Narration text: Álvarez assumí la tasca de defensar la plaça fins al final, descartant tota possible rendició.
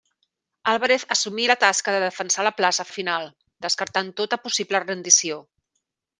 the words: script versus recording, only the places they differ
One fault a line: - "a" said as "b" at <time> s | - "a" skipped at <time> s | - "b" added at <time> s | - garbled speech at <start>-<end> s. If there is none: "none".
- "fins" skipped at 2.9 s